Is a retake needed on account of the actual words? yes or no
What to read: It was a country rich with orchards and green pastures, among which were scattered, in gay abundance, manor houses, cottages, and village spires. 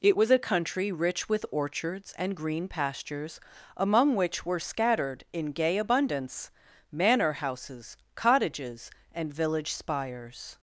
no